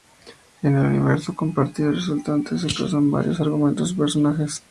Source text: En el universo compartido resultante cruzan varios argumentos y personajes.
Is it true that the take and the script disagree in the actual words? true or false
true